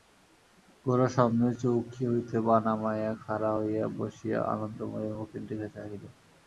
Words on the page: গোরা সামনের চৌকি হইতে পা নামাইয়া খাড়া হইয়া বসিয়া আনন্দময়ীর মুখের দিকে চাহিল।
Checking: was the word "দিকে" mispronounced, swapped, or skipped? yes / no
no